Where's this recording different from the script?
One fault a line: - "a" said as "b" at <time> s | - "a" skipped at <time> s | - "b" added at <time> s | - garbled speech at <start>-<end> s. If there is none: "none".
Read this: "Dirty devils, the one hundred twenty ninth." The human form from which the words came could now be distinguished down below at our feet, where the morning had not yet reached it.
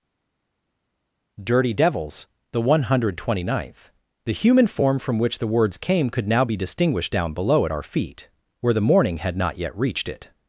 none